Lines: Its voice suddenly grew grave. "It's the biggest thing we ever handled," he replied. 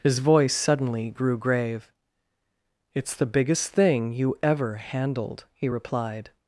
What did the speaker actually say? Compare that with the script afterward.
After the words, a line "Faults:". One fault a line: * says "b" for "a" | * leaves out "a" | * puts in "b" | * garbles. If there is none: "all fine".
His voice suddenly grew grave. "It's the biggest thing you ever handled," he replied.
Faults:
* says "His" for "Its"
* says "you" for "we"